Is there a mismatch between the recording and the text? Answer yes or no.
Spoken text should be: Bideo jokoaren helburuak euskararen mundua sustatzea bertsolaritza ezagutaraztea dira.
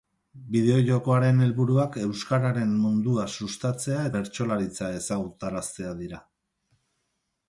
no